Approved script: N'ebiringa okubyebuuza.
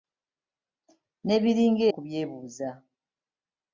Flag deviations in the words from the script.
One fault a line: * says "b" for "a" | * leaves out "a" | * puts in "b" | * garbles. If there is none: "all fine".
all fine